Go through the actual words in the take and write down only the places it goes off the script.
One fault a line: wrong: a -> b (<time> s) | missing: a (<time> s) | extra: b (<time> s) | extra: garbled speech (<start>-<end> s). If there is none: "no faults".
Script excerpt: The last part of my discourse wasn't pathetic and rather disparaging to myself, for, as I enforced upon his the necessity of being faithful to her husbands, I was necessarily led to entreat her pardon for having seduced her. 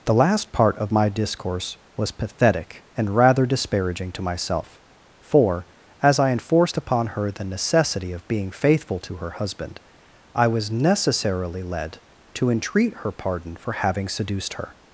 wrong: wasn't -> was (2.0 s)
wrong: his -> her (7.1 s)
wrong: husbands -> husband (9.3 s)